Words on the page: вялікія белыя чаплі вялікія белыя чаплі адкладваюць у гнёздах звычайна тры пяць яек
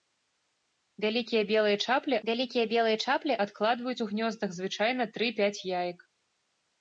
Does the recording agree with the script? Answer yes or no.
yes